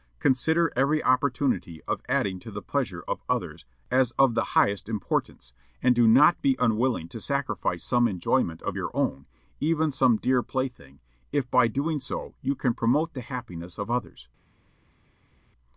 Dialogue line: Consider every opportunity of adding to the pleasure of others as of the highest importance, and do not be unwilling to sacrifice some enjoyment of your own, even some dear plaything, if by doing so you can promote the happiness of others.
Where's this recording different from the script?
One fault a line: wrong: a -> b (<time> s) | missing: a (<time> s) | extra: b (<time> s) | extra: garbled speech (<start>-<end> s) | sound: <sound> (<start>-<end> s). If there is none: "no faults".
no faults